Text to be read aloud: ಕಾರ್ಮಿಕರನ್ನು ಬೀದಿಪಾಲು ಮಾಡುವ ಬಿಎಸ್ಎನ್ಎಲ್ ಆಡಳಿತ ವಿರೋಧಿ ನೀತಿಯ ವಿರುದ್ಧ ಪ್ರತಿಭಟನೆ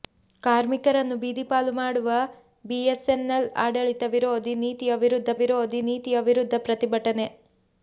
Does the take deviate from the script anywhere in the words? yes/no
yes